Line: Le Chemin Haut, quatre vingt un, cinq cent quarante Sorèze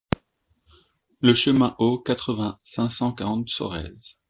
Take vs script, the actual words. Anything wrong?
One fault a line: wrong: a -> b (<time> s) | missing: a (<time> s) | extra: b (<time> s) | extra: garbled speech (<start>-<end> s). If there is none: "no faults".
missing: un (2.6 s)